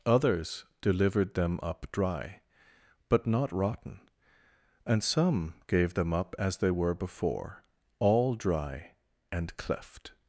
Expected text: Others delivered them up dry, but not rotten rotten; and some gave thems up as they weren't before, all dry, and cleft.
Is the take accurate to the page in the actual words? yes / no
no